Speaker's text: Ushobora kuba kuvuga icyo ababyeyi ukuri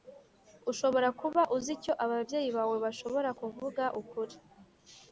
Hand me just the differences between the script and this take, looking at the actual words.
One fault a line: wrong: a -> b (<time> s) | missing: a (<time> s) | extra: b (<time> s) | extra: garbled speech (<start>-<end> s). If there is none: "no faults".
wrong: kuvuga -> uzi (1.6 s)
extra: bawe bashobora kuvuga (2.6 s)